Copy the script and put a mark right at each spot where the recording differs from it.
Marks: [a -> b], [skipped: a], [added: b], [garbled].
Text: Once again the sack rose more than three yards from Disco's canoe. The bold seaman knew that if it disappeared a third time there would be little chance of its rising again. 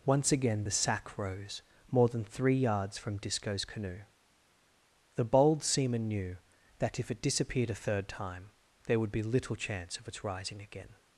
Once again the sack rose more than three yards from Disco's canoe. The bold seaman knew that if it disappeared a third time there would be little chance of its rising again.